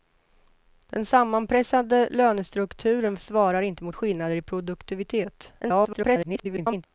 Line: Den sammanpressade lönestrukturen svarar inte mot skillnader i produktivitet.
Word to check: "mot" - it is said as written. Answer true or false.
true